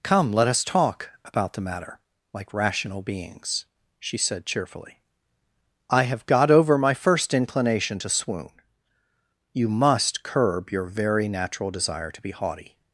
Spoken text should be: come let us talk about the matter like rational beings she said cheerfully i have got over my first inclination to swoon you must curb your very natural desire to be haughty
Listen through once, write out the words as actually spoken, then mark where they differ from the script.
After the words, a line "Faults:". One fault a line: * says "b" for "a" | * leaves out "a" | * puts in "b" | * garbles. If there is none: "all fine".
come let us talk about the matter like rational beings she said cheerfully i have got over my first inclination to swoon you must curb your very natural desire to be haughty
Faults:
all fine